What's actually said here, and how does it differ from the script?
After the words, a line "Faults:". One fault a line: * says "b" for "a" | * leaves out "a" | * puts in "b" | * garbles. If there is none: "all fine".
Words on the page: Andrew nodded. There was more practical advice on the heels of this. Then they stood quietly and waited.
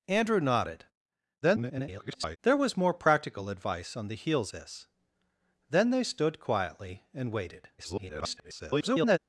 Andrew nodded. [garbled] There was more practical advice on the heels this. Then they stood quietly and waited. [garbled]
Faults:
* garbles
* leaves out "of"
* garbles